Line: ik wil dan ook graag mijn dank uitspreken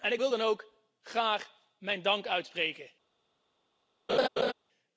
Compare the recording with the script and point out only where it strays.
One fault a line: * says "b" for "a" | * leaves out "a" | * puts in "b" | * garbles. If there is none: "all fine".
all fine